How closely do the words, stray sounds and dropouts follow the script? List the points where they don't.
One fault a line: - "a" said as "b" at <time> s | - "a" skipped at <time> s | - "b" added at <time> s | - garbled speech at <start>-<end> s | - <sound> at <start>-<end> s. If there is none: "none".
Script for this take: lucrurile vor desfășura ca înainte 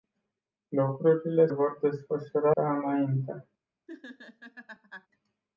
- laugh at 3.9-5.1 s